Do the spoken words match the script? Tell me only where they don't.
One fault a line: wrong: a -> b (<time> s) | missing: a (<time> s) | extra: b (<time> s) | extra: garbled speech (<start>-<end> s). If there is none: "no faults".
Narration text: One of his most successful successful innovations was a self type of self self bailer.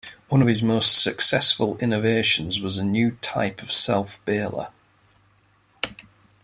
missing: successful (1.8 s)
wrong: self -> new (2.8 s)
missing: self (4.2 s)